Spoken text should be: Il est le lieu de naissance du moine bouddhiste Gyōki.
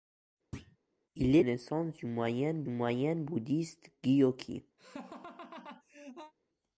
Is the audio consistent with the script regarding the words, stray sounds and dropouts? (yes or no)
no